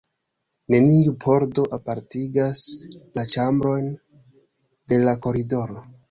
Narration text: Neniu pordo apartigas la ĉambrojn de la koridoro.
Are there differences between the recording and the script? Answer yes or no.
no